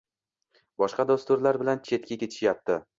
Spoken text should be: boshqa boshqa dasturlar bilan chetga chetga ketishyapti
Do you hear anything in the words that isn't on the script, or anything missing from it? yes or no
yes